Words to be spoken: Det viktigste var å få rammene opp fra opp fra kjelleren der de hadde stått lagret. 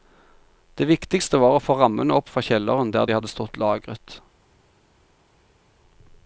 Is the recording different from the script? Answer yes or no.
yes